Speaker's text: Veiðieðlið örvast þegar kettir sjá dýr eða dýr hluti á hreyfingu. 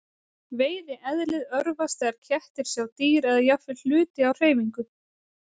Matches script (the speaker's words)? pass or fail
fail